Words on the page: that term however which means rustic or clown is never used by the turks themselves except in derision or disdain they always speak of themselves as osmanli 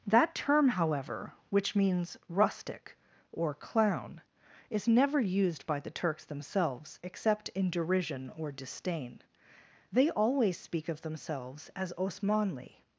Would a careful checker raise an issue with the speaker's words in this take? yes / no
no